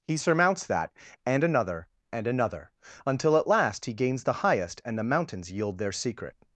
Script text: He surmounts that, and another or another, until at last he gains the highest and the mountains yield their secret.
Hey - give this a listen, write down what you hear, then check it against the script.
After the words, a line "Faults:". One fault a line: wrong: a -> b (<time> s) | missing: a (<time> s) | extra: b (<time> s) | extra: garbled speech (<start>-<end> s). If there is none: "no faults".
He surmounts that, and another and another, until at last he gains the highest and the mountains yield their secret.
Faults:
wrong: or -> and (2.1 s)